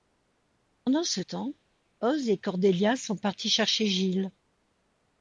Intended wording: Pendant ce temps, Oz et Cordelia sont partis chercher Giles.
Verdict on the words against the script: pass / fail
pass